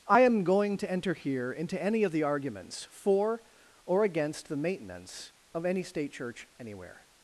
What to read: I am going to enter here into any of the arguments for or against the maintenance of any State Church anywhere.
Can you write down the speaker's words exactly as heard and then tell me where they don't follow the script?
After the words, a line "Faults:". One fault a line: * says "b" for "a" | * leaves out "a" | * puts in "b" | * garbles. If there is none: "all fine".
I am going to enter here into any of the arguments for or against the maintenance of any State Church anywhere.
Faults:
all fine